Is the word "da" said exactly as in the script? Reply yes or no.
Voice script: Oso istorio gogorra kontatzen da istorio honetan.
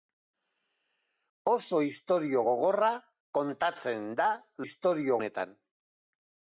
yes